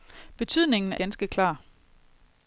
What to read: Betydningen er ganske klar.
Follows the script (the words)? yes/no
yes